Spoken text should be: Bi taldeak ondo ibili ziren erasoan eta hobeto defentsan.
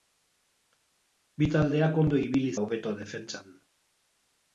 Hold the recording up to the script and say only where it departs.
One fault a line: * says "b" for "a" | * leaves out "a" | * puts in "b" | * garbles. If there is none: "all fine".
* leaves out "ziren erasoan eta"